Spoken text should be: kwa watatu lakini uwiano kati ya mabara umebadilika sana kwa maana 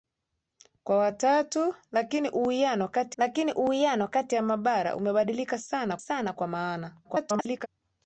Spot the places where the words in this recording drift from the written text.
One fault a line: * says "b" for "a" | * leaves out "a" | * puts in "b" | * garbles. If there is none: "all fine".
* puts in "lakini uwiano kati"
* puts in "sana"
* garbles